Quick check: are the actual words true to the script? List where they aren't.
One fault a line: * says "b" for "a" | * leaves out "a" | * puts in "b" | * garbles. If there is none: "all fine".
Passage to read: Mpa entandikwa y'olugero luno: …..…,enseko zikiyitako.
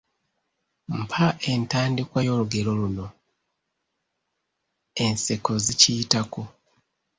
all fine